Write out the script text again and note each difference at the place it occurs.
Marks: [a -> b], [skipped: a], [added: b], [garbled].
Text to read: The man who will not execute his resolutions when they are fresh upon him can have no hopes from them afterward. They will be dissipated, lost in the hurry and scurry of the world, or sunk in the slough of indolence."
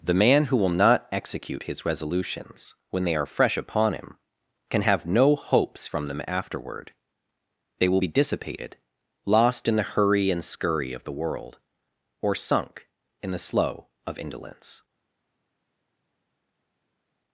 The man who will not execute his resolutions when they are fresh upon him can have no hopes from them afterward. They will be dissipated, lost in the hurry and scurry of the world, or sunk in the slough of indolence."